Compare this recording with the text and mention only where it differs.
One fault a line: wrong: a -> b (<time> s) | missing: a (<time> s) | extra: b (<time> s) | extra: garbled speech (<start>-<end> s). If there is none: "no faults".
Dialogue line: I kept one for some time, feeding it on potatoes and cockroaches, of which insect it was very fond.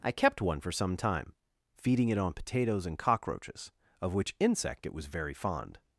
no faults